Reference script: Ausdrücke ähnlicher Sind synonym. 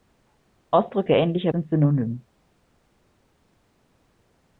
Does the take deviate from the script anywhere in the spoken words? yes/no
no